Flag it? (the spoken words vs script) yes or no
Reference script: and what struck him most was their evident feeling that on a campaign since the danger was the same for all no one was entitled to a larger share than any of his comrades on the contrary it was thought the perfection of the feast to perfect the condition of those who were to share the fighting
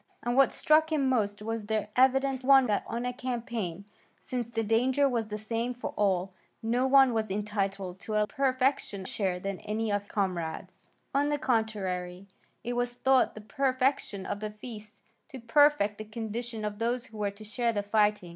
yes